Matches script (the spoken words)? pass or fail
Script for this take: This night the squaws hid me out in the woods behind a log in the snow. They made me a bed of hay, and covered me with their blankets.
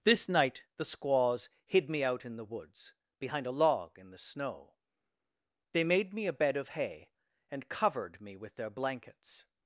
pass